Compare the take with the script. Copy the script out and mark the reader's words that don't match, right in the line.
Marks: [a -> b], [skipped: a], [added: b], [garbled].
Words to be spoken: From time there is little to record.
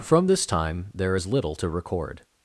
From [added: this] time there is little to record.